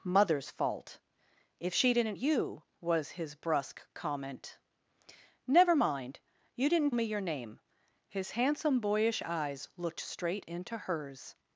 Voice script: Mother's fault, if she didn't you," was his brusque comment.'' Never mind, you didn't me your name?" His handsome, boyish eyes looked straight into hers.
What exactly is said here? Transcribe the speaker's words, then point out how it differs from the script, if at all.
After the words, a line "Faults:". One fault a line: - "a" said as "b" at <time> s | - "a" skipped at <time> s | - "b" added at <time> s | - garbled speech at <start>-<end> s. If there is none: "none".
Mother's fault, if she didn't you," was his brusque comment.'' Never mind, you didn't me your name?" His handsome, boyish eyes looked straight into hers.
Faults:
none